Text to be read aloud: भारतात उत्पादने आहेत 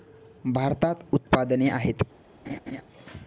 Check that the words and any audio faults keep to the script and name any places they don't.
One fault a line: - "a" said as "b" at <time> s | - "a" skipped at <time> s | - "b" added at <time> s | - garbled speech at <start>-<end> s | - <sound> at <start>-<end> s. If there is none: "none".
- laugh at 2.4-2.8 s